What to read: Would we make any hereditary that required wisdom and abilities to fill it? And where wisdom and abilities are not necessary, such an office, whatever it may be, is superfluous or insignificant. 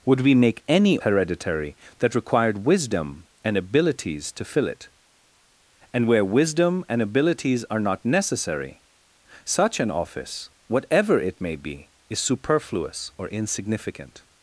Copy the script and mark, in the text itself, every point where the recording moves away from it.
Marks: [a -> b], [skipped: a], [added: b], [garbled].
Would we make any hereditary that required wisdom and abilities to fill it? And where wisdom and abilities are not necessary, such an office, whatever it may be, is superfluous or insignificant.